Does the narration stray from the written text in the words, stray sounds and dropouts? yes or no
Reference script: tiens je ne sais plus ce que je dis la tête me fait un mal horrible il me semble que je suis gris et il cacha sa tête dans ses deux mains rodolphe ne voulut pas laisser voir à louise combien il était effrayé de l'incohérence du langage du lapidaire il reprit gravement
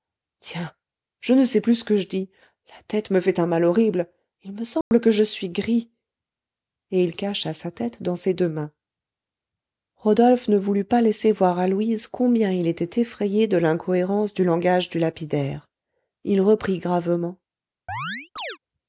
yes